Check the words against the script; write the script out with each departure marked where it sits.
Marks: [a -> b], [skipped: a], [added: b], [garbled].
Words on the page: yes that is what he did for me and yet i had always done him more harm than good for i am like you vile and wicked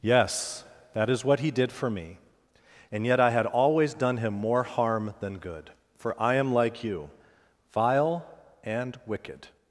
yes that is what he did for me and yet i had always done him more harm than good for i am like you vile and wicked